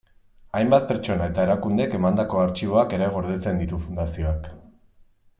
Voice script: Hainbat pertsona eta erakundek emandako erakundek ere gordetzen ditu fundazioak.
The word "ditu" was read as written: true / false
true